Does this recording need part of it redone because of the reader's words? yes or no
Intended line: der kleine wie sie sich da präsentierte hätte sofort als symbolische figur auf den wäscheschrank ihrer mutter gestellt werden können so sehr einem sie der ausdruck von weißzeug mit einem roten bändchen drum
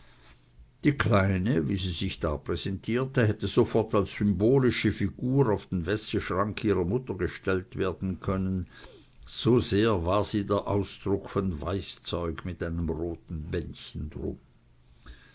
yes